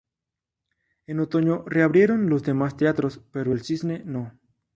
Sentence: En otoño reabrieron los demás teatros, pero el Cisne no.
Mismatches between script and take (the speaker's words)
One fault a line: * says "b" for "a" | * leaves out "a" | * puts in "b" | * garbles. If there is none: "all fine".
all fine